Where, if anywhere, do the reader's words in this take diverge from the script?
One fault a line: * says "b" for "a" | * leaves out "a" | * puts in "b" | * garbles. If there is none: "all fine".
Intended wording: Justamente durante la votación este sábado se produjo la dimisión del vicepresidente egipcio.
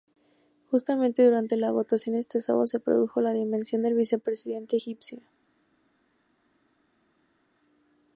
all fine